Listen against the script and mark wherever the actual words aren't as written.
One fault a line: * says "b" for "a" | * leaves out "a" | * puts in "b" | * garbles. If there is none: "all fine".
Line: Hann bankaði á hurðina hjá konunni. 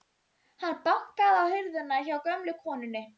* puts in "gömlu"